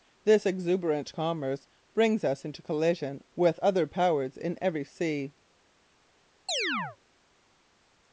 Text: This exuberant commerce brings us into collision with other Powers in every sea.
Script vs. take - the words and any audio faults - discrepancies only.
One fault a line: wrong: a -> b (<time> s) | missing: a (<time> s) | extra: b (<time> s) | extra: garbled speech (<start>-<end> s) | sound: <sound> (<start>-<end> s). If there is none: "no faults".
sound: chirp (6.5-7.0 s)